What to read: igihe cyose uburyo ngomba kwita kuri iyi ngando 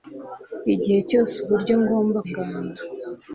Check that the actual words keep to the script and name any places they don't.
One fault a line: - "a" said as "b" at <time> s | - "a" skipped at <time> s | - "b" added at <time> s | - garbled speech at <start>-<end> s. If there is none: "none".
- "kwita kuri iyi" skipped at 2.2 s